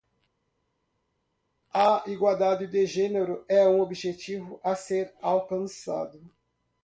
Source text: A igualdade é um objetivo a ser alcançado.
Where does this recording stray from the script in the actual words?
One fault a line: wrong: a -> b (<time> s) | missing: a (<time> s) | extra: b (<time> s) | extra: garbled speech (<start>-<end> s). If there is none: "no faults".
extra: de gênero (2.7 s)